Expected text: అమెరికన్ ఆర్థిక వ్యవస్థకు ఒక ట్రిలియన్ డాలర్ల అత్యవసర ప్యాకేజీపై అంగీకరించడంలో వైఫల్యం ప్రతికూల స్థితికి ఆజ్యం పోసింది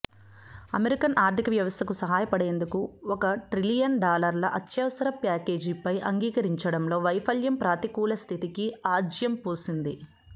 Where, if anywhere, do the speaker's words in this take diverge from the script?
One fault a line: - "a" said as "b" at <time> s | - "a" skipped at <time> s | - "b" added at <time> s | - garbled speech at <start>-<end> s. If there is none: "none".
- "సహాయపడేందుకు" added at 2.0 s